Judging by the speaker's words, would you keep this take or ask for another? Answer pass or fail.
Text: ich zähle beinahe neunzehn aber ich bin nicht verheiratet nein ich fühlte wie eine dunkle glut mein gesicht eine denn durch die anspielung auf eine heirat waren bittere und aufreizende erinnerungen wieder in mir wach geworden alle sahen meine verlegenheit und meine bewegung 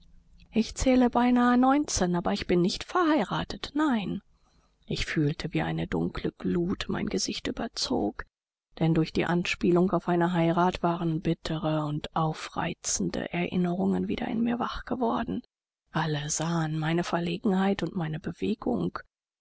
fail